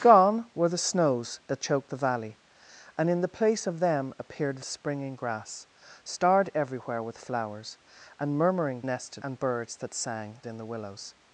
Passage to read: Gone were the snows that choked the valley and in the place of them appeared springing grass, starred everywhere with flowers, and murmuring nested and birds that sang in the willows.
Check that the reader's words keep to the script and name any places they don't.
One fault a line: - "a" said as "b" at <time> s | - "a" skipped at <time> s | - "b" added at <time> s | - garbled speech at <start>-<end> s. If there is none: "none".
none